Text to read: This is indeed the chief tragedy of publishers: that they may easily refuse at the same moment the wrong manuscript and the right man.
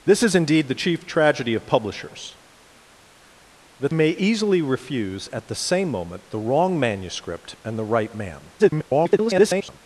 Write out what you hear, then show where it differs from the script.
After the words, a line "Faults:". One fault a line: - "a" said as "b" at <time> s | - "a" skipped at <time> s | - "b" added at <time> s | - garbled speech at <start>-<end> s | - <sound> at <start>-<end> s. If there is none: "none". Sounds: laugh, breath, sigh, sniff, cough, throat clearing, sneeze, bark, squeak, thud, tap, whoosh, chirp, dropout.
This is indeed the chief tragedy of publishers: that may easily refuse at the same moment the wrong manuscript and the right man. [garbled]
Faults:
- "they" skipped at 3.9 s
- garbled speech at 8.6-9.8 s